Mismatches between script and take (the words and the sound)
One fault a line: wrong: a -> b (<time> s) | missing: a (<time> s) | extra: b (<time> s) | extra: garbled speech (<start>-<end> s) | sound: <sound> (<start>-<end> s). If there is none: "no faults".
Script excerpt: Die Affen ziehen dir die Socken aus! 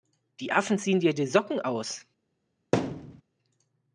sound: thud (2.7-3.2 s)